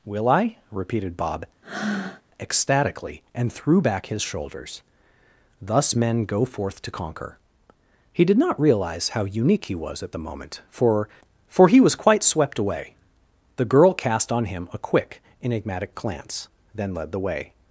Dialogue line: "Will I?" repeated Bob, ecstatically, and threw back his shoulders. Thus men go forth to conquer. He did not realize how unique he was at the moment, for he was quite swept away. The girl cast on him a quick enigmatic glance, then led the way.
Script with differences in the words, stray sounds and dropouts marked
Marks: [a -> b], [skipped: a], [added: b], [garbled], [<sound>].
"Will I?" repeated Bob, [breath] ecstatically, and threw back his shoulders. Thus men go forth to conquer. He did not realize how unique he was at the moment, for [added: for] he was quite swept away. The girl cast on him a quick enigmatic glance, then led the way.